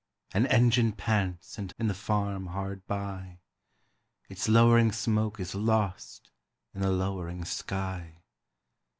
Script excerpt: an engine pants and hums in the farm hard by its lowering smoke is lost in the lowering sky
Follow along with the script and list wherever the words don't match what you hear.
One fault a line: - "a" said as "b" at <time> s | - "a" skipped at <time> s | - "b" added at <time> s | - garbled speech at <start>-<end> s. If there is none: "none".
- "hums" skipped at 1.7 s